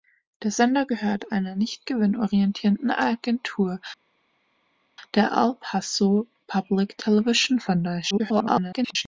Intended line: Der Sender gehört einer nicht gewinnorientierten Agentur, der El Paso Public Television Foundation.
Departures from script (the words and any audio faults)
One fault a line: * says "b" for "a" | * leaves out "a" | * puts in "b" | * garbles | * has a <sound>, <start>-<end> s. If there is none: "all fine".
* garbles